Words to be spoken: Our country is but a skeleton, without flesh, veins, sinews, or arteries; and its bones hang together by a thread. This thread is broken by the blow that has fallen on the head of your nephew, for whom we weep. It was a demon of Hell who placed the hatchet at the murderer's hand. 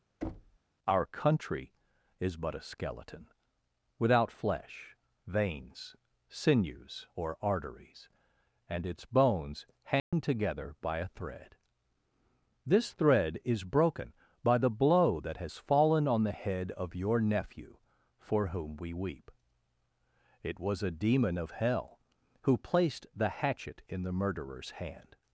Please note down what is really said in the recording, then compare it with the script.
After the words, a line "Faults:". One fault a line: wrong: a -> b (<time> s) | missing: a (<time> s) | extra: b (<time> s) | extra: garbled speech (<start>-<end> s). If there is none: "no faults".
Our country is but a skeleton, without flesh, veins, sinews, or arteries; and its bones hang together by a thread. This thread is broken by the blow that has fallen on the head of your nephew, for whom we weep. It was a demon of Hell who placed the hatchet in the murderer's hand.
Faults:
wrong: at -> in (23.9 s)